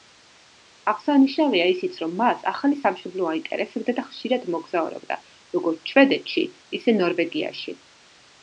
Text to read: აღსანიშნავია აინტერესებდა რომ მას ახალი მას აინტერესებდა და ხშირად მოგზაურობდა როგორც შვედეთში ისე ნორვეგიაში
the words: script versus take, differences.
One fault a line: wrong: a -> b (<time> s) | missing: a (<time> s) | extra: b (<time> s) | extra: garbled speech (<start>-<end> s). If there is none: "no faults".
wrong: აინტერესებდა -> ისიც (1.7 s)
wrong: მას -> სამშობლო (2.8 s)